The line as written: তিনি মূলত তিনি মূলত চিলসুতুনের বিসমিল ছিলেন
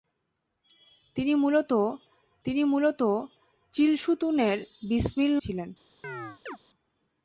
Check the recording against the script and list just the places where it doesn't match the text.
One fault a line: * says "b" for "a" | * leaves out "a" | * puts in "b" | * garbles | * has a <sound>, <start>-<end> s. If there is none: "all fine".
* has a chirp, 6.0-6.6 s